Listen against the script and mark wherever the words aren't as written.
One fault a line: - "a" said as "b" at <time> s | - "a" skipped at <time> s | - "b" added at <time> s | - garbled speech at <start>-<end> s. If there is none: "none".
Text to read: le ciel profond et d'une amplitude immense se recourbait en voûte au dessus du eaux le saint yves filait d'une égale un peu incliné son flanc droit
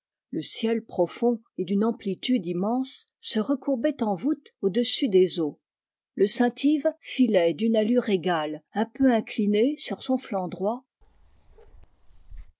- "du" said as "des" at 5.1 s
- "allure" added at 7.8 s
- "sur" added at 9.8 s